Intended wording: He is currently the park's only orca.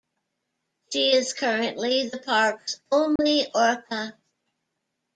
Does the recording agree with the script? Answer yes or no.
no